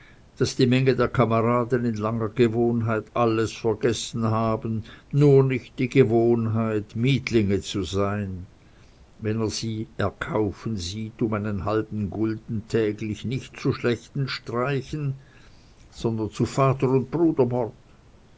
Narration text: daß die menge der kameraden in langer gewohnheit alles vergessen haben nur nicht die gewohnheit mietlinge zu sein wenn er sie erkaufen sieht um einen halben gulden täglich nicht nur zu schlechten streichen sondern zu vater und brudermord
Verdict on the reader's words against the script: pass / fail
fail